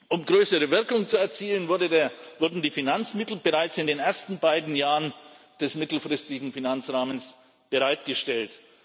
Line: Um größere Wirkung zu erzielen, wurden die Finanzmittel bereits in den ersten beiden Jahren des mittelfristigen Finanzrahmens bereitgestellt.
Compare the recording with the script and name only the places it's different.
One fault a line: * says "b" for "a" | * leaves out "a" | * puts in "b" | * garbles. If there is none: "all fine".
all fine